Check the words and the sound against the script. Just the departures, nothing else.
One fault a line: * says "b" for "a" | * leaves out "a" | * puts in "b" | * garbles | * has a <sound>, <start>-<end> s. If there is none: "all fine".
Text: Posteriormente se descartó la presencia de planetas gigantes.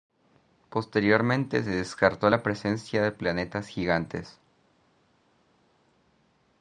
all fine